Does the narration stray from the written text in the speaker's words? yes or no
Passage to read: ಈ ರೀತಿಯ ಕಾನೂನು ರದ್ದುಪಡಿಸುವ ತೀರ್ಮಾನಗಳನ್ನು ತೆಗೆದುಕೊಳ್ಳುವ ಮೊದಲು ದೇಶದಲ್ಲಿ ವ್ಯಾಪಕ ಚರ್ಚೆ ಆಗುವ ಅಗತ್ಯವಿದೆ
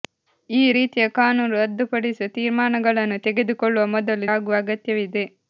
yes